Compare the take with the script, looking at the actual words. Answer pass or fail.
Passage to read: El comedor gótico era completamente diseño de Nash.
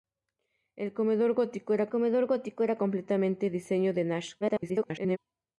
fail